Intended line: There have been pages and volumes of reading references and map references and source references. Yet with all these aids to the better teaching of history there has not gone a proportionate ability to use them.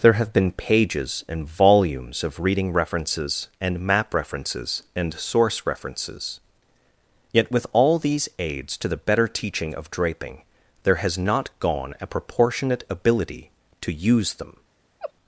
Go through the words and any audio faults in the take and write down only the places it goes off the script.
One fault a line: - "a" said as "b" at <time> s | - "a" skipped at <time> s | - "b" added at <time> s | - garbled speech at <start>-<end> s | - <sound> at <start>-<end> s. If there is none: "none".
- "history" said as "draping" at 9.9 s
- laugh at 15.0-15.1 s